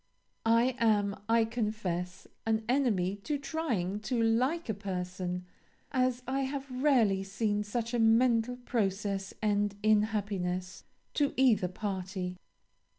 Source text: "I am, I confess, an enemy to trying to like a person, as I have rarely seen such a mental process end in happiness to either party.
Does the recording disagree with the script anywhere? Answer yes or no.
no